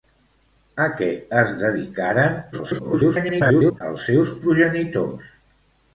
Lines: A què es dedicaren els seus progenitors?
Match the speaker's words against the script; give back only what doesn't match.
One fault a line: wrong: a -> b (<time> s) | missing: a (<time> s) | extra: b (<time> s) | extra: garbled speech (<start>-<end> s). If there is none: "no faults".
extra: garbled speech (2.5-3.8 s)